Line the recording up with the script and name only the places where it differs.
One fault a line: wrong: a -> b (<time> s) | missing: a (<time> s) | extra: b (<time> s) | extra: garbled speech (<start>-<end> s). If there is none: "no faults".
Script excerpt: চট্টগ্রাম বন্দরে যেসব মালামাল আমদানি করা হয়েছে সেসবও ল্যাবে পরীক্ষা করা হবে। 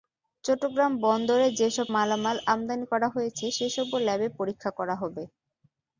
no faults